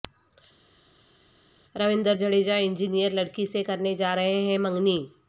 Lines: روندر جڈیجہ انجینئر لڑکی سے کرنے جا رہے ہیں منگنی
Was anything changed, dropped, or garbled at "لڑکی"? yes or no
no